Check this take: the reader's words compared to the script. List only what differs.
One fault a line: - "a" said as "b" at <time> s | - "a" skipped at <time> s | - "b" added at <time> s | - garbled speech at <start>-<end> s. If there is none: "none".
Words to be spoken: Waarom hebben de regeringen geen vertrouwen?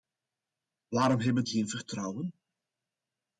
- "de regeringen" skipped at 1.4 s